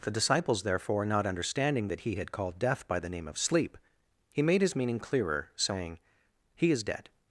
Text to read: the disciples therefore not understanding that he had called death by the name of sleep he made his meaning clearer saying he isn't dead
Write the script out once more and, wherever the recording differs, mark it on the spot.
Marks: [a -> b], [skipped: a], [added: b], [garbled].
the disciples therefore not understanding that he had called death by the name of sleep he made his meaning clearer saying he [isn't -> is] dead